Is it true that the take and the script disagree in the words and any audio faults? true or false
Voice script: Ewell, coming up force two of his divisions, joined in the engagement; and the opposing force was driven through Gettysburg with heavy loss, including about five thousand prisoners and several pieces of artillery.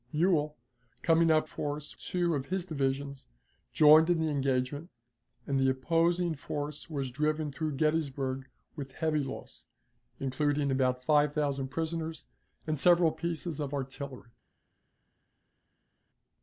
false